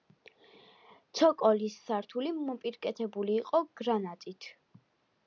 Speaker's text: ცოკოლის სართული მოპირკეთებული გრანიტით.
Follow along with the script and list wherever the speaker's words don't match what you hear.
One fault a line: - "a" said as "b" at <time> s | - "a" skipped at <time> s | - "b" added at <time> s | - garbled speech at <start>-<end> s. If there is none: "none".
- "იყო" added at 3.4 s